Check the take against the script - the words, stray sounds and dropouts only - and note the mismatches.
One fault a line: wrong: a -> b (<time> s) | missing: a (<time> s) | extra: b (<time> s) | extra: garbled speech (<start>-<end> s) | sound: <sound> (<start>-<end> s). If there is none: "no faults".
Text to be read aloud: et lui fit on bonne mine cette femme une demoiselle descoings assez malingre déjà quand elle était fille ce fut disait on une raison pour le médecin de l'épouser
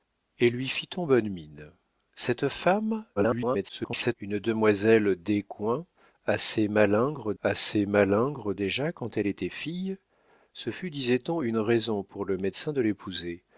extra: garbled speech (3.2-4.2 s)
extra: assez malingre (7.4 s)